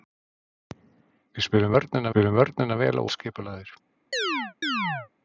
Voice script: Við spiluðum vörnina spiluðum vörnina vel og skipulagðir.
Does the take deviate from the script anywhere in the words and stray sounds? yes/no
yes